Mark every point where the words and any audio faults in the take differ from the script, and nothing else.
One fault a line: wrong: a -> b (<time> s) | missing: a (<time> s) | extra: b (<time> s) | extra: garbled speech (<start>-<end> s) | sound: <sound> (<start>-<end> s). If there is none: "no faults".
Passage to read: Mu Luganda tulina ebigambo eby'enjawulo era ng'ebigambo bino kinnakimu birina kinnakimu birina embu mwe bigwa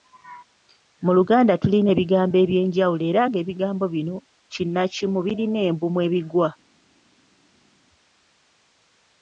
missing: kinnakimu birina (5.6 s)